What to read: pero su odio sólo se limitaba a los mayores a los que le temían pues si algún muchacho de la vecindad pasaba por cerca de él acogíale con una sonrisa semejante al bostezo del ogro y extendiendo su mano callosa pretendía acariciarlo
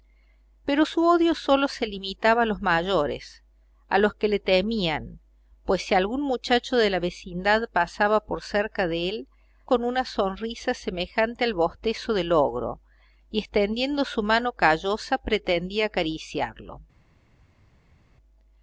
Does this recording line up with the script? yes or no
no